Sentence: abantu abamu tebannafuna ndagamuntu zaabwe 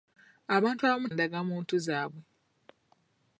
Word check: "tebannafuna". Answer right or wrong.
wrong